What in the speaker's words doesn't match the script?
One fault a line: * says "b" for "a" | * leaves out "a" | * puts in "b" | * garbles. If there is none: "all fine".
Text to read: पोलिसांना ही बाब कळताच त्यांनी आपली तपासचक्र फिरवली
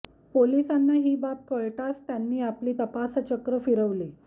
all fine